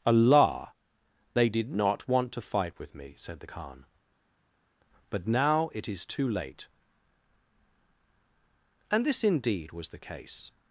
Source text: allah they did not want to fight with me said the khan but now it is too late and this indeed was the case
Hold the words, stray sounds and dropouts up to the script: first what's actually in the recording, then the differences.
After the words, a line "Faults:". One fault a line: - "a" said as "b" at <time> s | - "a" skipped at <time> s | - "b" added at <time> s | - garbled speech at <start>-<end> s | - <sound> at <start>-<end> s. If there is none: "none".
allah they did not want to fight with me said the khan but now it is too late and this indeed was the case
Faults:
none